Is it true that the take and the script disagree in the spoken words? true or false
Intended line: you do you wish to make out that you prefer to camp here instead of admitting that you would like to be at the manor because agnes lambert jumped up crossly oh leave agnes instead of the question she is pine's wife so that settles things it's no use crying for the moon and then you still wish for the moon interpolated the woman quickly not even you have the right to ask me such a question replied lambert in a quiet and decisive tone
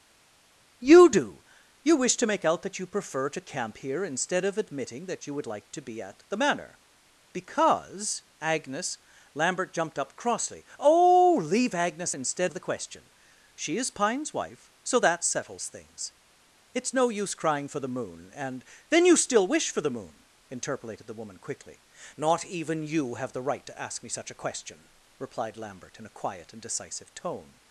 false